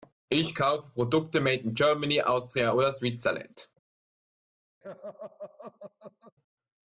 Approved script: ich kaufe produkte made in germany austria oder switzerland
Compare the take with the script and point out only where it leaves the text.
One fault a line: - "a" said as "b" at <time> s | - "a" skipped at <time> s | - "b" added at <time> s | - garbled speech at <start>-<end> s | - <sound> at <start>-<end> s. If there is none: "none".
- laugh at 4.8-6.3 s